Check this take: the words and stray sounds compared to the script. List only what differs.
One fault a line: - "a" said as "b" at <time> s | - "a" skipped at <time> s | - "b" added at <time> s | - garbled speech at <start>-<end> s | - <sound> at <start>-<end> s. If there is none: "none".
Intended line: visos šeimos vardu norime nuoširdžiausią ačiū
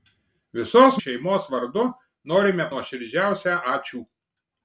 none